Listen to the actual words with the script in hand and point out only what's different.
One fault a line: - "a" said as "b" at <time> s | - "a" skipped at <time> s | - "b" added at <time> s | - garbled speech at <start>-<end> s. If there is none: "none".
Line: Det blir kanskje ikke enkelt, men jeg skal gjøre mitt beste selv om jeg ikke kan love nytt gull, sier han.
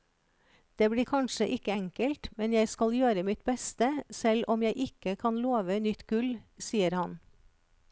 none